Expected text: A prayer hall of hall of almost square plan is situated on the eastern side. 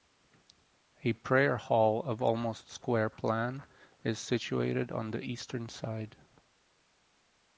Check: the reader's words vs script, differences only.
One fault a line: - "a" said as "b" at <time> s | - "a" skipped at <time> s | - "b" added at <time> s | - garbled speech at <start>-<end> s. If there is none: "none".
- "hall of" skipped at 2.2 s